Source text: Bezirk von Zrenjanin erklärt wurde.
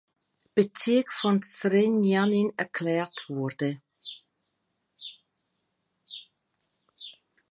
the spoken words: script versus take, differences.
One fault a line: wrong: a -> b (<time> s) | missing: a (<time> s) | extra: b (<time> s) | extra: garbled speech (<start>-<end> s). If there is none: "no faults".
no faults